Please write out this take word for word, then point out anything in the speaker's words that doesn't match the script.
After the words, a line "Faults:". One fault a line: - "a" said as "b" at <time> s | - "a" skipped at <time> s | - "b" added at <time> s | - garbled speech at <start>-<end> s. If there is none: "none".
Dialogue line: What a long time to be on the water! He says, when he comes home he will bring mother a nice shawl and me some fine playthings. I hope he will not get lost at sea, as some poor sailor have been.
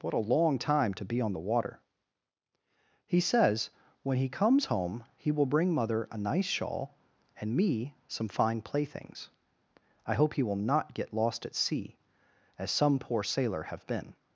What a long time to be on the water! He says, when he comes home he will bring mother a nice shawl and me some fine playthings. I hope he will not get lost at sea, as some poor sailor have been.
Faults:
none